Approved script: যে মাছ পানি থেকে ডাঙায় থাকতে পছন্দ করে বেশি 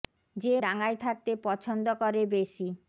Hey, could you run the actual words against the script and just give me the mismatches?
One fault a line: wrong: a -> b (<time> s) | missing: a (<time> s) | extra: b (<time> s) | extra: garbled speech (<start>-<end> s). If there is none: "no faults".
missing: মাছ পানি থেকে (0.6 s)